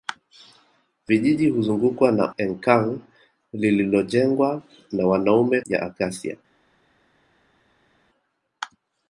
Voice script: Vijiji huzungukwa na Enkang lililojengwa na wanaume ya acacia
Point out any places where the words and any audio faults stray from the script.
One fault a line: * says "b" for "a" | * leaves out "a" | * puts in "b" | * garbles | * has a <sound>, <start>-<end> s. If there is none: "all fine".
all fine